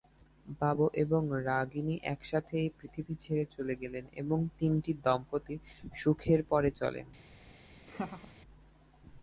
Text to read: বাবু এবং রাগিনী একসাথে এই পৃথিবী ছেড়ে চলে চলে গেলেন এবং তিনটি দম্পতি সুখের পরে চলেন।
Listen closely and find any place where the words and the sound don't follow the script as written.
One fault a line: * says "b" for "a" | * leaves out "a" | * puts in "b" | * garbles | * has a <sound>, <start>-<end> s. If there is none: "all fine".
* leaves out "চলে"
* has a laugh, 7.9-8.4 s